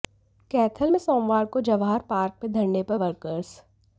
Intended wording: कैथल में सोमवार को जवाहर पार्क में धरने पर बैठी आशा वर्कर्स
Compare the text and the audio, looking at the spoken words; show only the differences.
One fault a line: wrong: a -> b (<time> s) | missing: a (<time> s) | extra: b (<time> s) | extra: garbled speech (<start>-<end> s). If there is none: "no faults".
missing: बैठी आशा (3.0 s)